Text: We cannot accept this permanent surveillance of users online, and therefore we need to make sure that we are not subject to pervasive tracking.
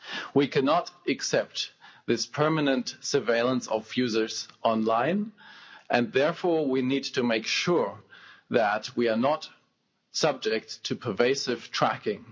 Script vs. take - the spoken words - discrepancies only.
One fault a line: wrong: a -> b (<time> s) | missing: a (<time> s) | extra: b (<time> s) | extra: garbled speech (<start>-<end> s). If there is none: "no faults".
no faults